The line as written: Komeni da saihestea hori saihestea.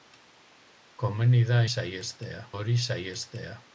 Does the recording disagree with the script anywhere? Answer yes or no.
no